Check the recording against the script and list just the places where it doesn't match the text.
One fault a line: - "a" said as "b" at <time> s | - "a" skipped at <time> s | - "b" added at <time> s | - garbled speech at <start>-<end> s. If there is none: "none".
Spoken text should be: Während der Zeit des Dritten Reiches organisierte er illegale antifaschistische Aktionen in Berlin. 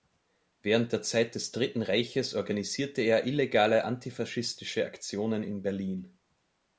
none